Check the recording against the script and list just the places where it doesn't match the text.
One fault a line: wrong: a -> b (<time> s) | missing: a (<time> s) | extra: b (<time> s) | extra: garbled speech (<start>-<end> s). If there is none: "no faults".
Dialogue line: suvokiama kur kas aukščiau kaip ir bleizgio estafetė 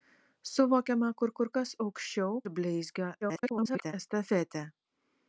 extra: kur (1.4 s)
missing: kaip (2.4 s)
extra: garbled speech (3.2-3.9 s)